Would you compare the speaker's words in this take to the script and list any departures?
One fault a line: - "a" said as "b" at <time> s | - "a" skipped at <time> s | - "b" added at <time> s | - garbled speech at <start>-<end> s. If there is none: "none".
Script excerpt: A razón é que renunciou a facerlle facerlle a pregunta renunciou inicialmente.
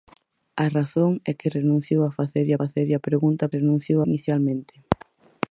none